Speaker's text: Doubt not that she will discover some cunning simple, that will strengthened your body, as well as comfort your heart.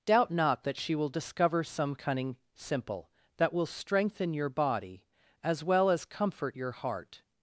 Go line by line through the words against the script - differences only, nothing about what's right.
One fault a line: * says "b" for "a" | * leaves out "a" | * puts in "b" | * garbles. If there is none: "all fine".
* says "strengthen" for "strengthened"